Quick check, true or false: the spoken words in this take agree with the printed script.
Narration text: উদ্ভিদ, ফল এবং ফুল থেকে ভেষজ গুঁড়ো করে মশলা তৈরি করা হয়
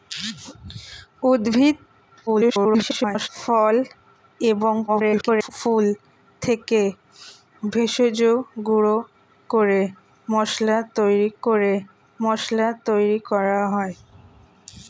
false